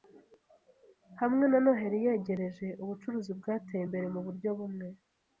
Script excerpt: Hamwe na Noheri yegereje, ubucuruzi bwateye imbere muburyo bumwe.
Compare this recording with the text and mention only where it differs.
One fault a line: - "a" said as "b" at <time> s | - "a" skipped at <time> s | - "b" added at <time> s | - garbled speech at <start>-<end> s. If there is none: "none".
none